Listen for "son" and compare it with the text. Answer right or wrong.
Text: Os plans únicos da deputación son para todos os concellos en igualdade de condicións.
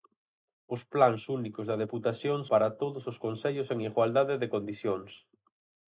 wrong